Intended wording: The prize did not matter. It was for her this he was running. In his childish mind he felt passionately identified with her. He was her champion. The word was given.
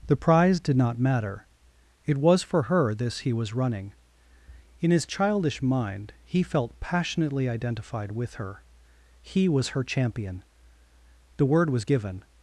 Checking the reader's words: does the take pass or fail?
pass